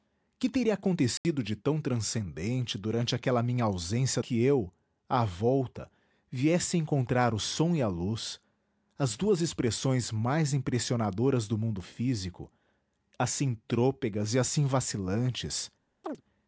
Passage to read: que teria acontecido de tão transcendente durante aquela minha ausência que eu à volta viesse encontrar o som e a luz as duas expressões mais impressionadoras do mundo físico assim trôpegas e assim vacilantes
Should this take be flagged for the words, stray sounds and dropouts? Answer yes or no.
yes